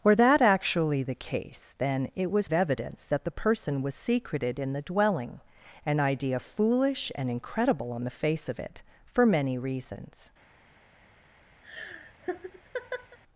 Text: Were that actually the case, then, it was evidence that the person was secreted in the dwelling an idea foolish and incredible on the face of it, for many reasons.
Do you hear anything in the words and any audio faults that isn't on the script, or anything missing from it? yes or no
yes